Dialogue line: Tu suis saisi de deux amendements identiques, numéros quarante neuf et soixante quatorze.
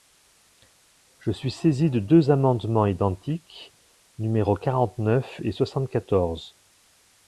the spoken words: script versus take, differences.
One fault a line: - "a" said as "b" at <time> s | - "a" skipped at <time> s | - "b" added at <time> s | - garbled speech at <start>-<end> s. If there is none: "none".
- "Tu" said as "Je" at 1.2 s